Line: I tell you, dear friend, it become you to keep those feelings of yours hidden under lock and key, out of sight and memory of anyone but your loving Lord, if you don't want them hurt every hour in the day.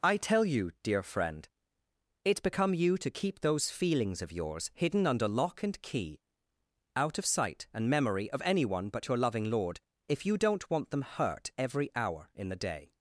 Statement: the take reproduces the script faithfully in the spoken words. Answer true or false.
true